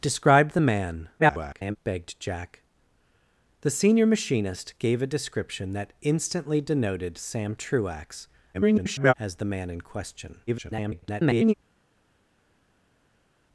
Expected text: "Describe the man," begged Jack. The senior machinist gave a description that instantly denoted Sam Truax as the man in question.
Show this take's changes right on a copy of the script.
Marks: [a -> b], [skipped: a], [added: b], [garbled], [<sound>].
"Describe the man," [garbled] begged Jack. The senior machinist gave a description that instantly denoted Sam Truax [garbled] as the man in question. [garbled]